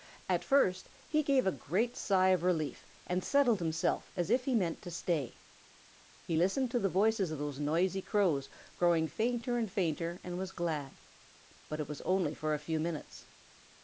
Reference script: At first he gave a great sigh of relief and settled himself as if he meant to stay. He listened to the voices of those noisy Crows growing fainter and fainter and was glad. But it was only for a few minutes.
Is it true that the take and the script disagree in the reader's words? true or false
false